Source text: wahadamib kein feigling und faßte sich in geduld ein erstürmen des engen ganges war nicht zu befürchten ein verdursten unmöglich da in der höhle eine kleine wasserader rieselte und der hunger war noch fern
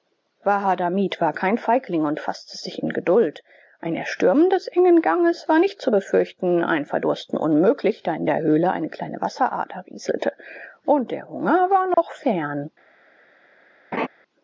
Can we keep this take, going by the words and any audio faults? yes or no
no